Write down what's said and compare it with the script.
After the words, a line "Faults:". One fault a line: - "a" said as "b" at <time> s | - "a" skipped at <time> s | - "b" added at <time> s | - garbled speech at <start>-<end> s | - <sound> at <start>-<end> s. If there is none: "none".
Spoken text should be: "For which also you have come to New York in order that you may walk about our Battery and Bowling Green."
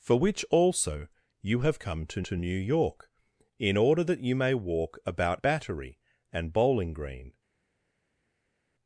"For which also you have come to to New York in order that you may walk about Battery and Bowling Green."
Faults:
- "to" added at 2.2 s
- "our" skipped at 5.4 s